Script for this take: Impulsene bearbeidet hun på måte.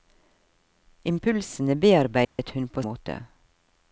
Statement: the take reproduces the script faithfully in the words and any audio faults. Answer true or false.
false